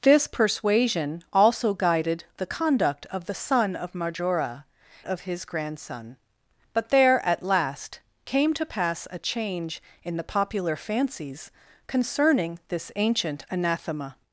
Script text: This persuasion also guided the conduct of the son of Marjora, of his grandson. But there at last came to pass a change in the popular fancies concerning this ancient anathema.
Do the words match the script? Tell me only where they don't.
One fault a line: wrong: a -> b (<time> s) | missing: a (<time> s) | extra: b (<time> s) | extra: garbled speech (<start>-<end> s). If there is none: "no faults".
no faults